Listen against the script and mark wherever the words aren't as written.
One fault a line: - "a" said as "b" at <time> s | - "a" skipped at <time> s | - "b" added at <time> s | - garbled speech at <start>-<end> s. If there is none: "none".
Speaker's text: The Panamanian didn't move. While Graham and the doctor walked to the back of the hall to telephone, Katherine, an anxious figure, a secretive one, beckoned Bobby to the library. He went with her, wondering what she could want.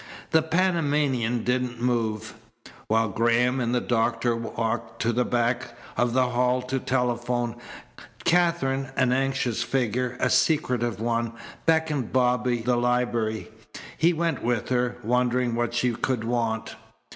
- "to" skipped at 12.6 s